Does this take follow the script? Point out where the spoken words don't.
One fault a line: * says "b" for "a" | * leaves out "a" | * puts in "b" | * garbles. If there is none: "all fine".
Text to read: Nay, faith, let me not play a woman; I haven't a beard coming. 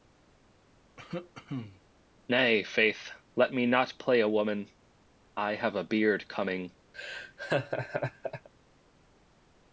* says "have" for "haven't"